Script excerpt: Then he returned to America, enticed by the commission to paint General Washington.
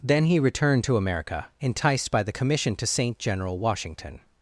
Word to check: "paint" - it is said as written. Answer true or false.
false